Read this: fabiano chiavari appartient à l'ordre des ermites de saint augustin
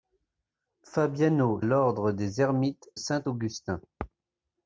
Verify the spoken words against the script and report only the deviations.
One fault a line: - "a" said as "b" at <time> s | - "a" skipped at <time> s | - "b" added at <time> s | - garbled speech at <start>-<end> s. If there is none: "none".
- "chiavari appartient à" skipped at 1.6 s
- "de" skipped at 2.9 s